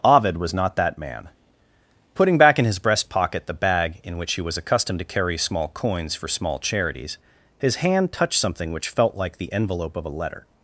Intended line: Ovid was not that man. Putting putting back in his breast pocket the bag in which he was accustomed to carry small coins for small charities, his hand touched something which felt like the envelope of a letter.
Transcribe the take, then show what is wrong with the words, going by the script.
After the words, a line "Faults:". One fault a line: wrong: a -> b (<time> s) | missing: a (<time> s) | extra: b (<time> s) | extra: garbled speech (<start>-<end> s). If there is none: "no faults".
Ovid was not that man. Putting back in his breast pocket the bag in which he was accustomed to carry small coins for small charities, his hand touched something which felt like the envelope of a letter.
Faults:
missing: putting (2.4 s)